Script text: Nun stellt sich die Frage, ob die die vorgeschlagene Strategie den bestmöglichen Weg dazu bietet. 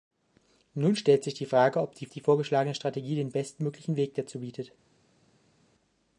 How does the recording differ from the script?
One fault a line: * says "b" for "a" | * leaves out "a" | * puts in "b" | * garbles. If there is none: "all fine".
all fine